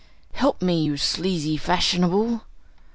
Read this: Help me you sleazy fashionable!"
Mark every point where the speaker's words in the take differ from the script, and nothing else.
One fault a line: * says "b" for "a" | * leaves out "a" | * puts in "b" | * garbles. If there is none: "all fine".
all fine